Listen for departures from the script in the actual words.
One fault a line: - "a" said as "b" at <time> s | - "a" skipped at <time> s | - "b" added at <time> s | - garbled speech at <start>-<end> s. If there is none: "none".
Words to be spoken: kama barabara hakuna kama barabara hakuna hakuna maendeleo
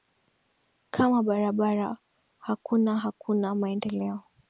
- "kama barabara hakuna" skipped at 3.0 s